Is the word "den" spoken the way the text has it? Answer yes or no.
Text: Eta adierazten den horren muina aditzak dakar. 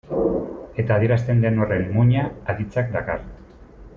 yes